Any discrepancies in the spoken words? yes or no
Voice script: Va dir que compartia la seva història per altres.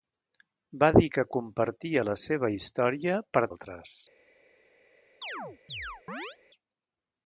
no